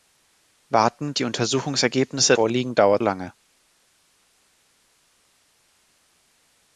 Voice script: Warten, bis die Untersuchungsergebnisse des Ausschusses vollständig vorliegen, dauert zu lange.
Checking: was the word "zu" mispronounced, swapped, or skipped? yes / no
yes